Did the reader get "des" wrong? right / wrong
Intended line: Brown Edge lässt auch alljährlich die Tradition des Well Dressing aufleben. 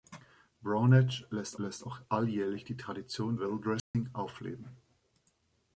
wrong